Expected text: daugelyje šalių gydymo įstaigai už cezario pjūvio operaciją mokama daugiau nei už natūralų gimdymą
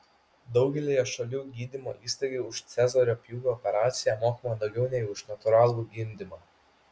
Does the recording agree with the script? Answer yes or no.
yes